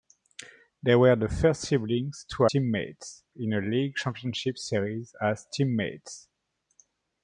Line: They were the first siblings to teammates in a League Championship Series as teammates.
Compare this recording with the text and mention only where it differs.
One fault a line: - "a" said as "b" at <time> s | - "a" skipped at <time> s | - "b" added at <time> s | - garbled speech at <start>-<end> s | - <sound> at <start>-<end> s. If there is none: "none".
none